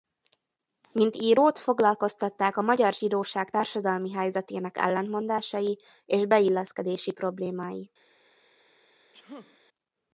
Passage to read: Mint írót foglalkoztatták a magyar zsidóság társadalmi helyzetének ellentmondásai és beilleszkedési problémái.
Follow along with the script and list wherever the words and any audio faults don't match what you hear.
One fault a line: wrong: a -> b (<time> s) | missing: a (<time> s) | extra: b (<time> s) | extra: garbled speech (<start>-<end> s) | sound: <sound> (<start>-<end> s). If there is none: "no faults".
sound: sneeze (9.1-9.6 s)